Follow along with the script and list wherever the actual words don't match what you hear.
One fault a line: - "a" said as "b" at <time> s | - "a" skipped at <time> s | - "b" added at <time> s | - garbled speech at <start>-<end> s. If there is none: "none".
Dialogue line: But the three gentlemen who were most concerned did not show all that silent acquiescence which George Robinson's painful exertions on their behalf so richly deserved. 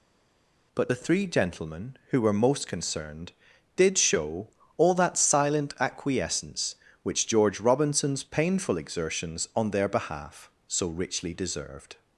- "not" skipped at 4.0 s